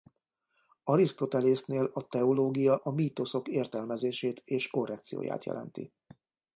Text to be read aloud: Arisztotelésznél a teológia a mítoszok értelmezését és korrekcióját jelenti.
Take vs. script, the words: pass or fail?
pass